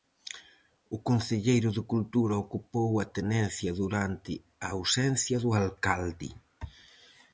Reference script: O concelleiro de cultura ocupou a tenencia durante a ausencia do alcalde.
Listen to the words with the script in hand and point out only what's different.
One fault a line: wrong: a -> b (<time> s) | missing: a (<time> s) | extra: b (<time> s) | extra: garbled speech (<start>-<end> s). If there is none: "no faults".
no faults